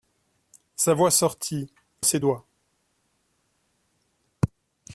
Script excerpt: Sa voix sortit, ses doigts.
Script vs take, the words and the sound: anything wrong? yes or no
no